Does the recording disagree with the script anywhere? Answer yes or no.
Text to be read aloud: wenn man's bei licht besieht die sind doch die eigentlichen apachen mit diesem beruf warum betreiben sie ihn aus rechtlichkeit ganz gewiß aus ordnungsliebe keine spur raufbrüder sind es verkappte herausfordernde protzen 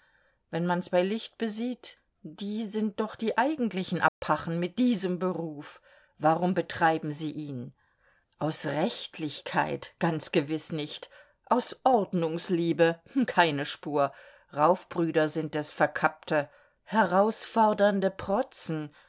yes